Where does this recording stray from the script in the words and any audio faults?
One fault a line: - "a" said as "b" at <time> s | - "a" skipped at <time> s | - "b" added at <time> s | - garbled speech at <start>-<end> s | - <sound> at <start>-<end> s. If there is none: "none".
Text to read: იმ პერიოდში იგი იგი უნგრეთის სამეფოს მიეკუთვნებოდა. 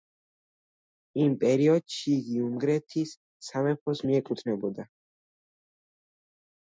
- "იგი" skipped at 2.4 s